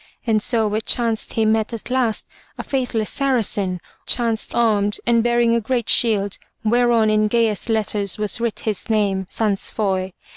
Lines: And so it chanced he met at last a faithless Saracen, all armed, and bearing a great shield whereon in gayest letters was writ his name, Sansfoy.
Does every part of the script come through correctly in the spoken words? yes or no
no